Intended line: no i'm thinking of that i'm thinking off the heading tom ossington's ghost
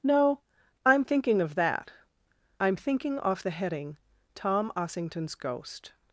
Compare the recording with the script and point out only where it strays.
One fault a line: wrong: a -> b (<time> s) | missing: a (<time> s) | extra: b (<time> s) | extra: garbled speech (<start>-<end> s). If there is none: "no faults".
no faults